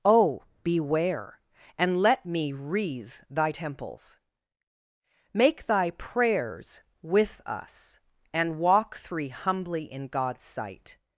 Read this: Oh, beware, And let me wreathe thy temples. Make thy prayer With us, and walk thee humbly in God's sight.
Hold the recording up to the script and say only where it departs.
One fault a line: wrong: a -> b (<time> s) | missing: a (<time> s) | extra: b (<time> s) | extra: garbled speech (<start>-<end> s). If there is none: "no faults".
wrong: prayer -> prayers (5.9 s)
wrong: thee -> three (8.9 s)